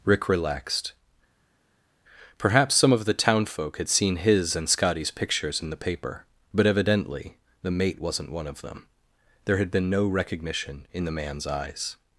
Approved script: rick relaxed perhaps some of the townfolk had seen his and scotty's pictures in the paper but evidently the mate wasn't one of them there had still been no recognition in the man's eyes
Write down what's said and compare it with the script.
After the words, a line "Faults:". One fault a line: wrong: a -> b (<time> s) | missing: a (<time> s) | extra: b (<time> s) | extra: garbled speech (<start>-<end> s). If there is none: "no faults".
rick relaxed perhaps some of the townfolk had seen his and scotty's pictures in the paper but evidently the mate wasn't one of them there had been no recognition in the man's eyes
Faults:
missing: still (9.7 s)